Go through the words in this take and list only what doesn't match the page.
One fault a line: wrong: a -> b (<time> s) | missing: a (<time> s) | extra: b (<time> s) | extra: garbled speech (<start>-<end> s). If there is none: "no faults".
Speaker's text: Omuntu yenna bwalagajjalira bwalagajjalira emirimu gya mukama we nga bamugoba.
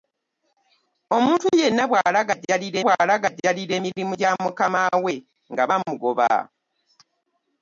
no faults